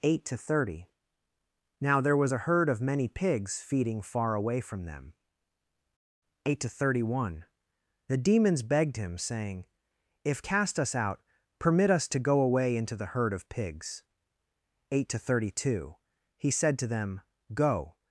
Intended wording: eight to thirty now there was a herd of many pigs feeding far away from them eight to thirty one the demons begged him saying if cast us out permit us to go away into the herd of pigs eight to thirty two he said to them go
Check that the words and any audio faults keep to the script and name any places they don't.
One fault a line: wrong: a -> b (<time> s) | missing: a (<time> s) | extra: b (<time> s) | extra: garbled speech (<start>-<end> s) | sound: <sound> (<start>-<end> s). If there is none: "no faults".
no faults